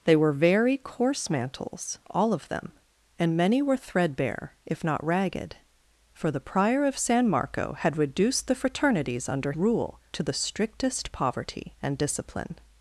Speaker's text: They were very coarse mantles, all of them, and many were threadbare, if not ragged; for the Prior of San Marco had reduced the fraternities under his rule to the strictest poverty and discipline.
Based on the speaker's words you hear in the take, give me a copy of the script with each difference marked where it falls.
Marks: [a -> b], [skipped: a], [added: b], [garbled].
They were very coarse mantles, all of them, and many were threadbare, if not ragged; for the Prior of San Marco had reduced the fraternities under [skipped: his] rule to the strictest poverty and discipline.